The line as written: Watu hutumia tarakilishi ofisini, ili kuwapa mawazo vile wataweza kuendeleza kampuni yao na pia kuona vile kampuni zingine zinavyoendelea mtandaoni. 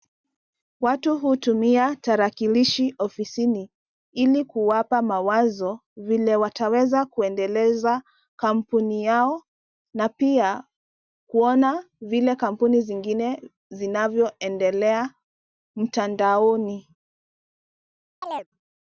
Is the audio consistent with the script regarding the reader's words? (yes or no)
yes